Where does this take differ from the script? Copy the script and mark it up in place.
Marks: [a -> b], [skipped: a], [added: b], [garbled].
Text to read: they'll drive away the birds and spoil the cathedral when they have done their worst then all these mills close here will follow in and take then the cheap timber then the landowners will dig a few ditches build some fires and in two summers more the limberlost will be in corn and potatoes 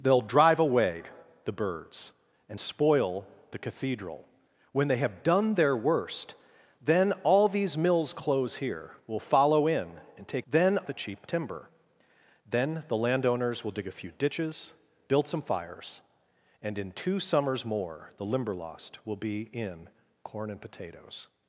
they'll drive away the birds and spoil the cathedral when they have done their worst then all these mills close here will follow in and take then the cheap timber then the landowners will dig a few ditches build some fires and in two summers more the limberlost will be in corn and potatoes